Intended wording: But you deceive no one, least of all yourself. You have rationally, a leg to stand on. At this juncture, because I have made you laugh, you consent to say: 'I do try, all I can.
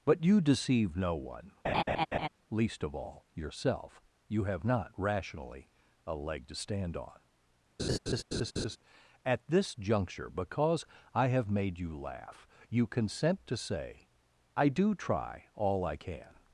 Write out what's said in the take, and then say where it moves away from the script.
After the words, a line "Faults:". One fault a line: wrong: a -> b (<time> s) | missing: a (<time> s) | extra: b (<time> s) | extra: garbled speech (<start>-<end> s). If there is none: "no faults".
But you deceive no one, least of all yourself. You have not, rationally, a leg to stand on. At this juncture, because I have made you laugh, you consent to say: 'I do try, all I can.
Faults:
extra: not (4.6 s)